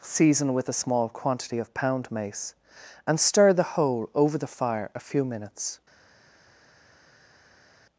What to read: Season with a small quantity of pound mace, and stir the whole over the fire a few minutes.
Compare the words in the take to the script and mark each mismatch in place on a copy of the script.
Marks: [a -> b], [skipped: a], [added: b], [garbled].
Season with a small quantity of pound mace, and stir the whole over the fire a few minutes.